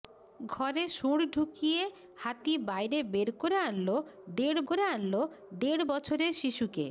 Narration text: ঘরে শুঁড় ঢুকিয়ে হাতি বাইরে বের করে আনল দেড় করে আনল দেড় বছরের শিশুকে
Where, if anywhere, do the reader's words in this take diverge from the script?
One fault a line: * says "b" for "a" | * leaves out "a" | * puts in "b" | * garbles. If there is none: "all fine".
all fine